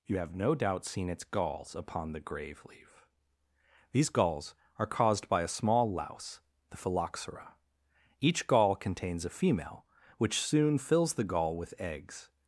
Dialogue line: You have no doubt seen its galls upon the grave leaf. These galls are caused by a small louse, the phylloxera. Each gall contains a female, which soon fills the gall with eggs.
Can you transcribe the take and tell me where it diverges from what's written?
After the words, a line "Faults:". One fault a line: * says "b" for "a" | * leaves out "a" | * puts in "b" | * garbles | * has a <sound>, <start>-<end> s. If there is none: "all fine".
You have no doubt seen its galls upon the grave leaf. These galls are caused by a small louse, the phylloxera. Each gall contains a female, which soon fills the gall with eggs.
Faults:
all fine